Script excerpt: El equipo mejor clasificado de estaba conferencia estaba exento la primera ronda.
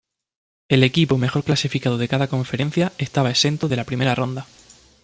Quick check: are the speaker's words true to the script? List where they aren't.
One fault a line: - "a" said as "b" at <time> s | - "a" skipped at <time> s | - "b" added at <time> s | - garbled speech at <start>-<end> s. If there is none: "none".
- "estaba" said as "cada" at 2.1 s
- "de" added at 3.7 s